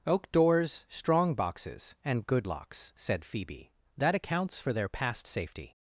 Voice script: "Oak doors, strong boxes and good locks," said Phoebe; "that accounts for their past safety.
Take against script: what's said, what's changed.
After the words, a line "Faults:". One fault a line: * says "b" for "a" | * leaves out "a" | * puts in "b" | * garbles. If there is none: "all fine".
"Oak doors, strong boxes and good locks," said Phoebe; "that accounts for their past safety.
Faults:
all fine